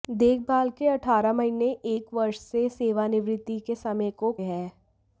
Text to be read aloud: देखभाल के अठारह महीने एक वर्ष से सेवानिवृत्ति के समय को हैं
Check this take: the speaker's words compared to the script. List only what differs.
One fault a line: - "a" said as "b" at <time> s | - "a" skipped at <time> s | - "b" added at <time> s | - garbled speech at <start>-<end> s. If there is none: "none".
none